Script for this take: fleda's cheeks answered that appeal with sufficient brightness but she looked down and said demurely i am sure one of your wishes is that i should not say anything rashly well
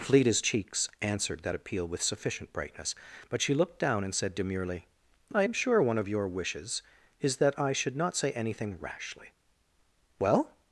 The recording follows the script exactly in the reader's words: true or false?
true